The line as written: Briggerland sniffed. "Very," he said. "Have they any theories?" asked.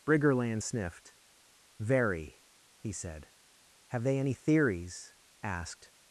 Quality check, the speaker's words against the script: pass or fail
pass